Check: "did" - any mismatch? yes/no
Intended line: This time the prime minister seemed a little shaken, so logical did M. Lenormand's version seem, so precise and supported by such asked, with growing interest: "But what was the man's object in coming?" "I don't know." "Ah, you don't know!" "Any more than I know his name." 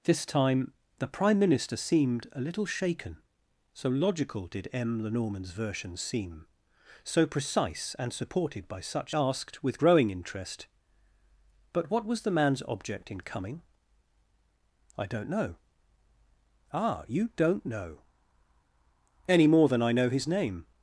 no